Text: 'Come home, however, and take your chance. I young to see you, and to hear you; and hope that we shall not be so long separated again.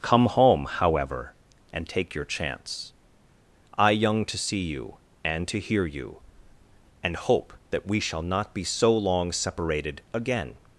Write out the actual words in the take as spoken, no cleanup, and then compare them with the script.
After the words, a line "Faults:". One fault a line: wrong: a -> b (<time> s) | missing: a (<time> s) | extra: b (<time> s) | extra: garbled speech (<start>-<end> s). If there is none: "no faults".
'Come home, however, and take your chance. I young to see you, and to hear you; and hope that we shall not be so long separated again.
Faults:
no faults